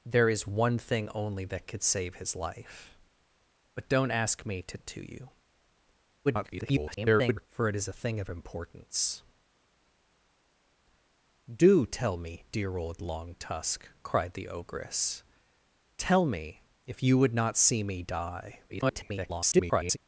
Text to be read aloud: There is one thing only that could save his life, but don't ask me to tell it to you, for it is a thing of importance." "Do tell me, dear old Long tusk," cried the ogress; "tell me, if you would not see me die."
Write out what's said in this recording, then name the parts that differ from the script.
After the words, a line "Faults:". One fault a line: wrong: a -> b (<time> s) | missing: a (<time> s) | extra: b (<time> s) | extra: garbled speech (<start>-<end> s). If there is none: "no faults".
There is one thing only that could save his life, but don't ask me to it to you, [garbled] for it is a thing of importance." "Do tell me, dear old Long tusk," cried the ogress; "tell me, if you would not see me die." [garbled]
Faults:
missing: tell (4.8 s)
extra: garbled speech (6.2-7.5 s)
extra: garbled speech (18.7-20.0 s)